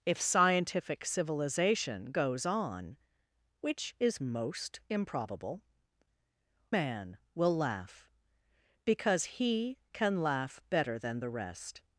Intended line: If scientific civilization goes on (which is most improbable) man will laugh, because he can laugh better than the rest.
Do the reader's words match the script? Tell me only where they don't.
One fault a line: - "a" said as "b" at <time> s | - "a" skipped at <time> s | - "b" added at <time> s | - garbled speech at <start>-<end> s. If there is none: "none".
none